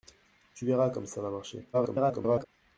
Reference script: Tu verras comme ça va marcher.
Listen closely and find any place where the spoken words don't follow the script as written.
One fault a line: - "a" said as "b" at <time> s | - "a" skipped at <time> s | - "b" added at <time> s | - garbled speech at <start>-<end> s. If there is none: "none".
- garbled speech at 1.7-2.5 s